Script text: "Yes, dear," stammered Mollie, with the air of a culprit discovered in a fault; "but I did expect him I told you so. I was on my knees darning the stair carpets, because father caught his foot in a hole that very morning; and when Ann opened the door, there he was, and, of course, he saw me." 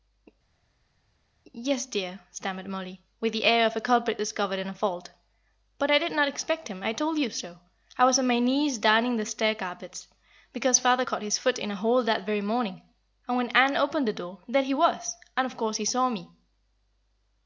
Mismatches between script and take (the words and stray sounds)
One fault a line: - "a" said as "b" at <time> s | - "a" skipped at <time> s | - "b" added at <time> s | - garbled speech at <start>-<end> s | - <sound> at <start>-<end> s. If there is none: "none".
- "not" added at 6.1 s